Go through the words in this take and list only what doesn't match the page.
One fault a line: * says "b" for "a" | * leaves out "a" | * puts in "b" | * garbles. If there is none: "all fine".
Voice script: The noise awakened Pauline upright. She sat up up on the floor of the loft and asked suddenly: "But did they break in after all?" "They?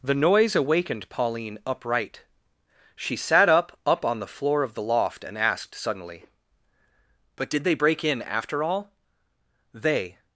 all fine